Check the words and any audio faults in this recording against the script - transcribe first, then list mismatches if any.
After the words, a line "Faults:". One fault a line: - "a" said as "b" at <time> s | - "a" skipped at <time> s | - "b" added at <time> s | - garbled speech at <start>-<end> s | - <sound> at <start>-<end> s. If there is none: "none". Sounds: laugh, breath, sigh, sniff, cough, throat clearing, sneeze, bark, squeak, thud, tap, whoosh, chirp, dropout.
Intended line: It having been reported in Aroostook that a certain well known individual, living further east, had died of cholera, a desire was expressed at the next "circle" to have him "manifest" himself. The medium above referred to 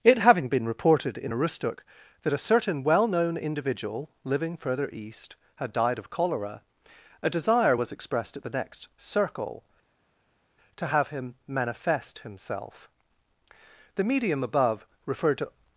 It having been reported in Aroostook that a certain well known individual, living further east, had died of cholera, a desire was expressed at the next "circle" to have him "manifest" himself. The medium above referred to
Faults:
none